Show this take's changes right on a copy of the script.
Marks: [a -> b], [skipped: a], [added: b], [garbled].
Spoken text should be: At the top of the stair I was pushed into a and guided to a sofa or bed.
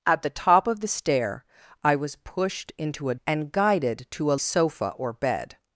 At the top of the stair I was pushed into a and guided to a sofa or bed.